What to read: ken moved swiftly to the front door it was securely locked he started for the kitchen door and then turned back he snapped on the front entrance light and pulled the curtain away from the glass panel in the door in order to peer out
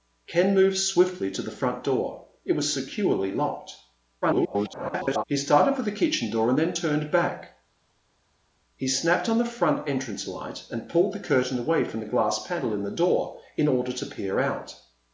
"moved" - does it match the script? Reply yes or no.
yes